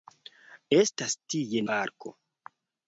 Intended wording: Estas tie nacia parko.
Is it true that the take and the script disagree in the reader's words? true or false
true